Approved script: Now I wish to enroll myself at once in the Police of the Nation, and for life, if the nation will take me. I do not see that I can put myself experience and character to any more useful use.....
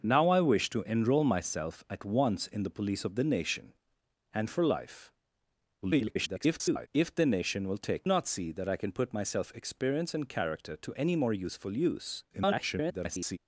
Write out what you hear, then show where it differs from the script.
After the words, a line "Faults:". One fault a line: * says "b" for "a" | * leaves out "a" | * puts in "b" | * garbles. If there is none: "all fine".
Now I wish to enroll myself at once in the Police of the Nation, and for life, [garbled] if the nation will take not see that I can put myself experience and character to any more useful use..... [garbled]
Faults:
* garbles
* leaves out "me I do"
* garbles